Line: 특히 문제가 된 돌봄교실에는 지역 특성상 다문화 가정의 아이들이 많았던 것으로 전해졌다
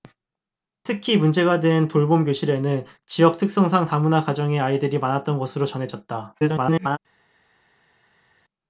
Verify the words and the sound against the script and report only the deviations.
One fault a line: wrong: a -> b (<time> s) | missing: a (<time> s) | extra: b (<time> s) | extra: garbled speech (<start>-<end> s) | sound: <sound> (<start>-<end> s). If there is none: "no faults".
extra: garbled speech (6.4-7.0 s)